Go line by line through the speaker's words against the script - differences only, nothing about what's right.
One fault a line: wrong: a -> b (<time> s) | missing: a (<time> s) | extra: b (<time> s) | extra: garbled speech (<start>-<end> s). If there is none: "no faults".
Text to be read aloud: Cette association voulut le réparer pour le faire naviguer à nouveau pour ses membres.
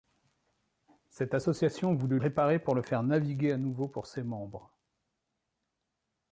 missing: le (2.2 s)